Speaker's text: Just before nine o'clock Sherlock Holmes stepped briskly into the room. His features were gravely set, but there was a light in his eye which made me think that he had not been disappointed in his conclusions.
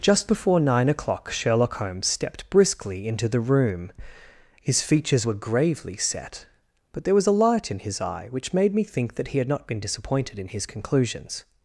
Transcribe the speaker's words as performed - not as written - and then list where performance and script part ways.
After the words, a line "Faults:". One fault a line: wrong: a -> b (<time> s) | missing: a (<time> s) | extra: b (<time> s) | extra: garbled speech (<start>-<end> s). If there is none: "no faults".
Just before nine o'clock Sherlock Holmes stepped briskly into the room. His features were gravely set, but there was a light in his eye which made me think that he had not been disappointed in his conclusions.
Faults:
no faults